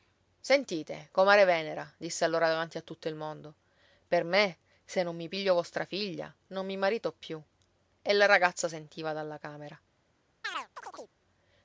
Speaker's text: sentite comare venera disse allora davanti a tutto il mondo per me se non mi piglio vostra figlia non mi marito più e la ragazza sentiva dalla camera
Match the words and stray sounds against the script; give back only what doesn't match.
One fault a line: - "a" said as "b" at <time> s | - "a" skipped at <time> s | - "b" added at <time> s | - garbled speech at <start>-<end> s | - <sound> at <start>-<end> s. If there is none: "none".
- chirp at 10.4-11.1 s